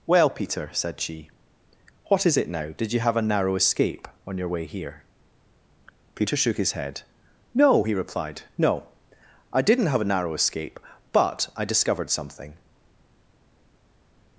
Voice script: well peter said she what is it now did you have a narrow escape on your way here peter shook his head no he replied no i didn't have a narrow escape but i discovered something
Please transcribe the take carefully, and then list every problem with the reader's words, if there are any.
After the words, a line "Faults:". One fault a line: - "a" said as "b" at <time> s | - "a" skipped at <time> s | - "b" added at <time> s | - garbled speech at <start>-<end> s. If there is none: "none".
well peter said she what is it now did you have a narrow escape on your way here peter shook his head no he replied no i didn't have a narrow escape but i discovered something
Faults:
none